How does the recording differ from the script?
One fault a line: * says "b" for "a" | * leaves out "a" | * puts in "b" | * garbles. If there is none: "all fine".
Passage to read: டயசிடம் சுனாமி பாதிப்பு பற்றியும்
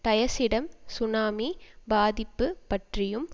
all fine